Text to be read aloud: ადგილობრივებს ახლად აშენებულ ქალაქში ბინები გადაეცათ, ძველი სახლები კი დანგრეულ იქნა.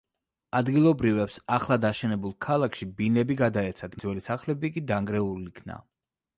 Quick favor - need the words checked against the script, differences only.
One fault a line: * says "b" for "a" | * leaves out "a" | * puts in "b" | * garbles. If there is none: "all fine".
all fine